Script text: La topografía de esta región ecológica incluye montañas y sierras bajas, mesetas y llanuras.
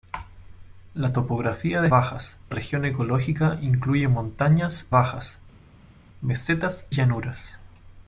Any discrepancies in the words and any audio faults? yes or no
yes